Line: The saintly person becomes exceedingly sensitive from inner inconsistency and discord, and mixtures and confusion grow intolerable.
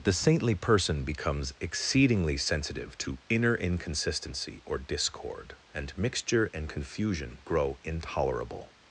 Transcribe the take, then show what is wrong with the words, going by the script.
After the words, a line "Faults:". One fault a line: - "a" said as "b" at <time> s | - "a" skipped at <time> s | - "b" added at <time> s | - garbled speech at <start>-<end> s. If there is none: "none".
The saintly person becomes exceedingly sensitive to inner inconsistency or discord, and mixture and confusion grow intolerable.
Faults:
- "from" said as "to" at 3.0 s
- "and" said as "or" at 4.7 s
- "mixtures" said as "mixture" at 6.0 s